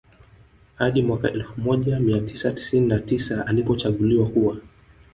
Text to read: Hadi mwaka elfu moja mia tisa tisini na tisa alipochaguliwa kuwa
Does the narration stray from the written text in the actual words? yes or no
no